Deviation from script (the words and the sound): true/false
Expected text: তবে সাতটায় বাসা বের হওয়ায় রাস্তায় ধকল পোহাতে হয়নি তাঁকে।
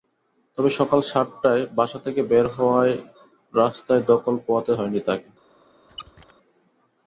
true